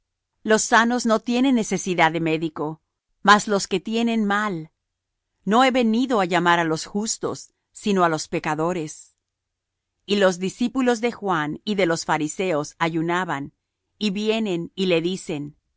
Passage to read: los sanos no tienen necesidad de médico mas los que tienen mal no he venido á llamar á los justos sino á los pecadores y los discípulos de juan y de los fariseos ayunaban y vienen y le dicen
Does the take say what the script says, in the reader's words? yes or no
yes